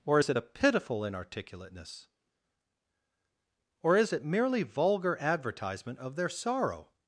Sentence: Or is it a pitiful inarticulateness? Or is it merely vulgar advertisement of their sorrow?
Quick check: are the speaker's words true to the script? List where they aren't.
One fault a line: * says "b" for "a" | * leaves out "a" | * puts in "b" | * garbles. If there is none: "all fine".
all fine